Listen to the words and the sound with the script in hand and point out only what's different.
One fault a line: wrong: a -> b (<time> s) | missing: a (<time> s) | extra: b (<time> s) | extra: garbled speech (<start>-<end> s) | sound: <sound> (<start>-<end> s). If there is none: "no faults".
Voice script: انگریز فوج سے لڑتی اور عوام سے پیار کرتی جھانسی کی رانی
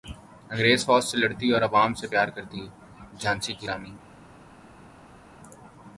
no faults